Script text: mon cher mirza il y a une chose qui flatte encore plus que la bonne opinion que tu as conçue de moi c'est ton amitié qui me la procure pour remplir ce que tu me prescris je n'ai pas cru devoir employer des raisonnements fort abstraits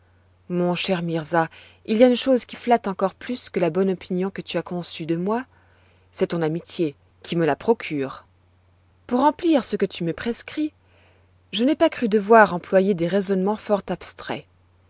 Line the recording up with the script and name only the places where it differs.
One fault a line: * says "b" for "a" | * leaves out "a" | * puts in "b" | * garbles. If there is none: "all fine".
all fine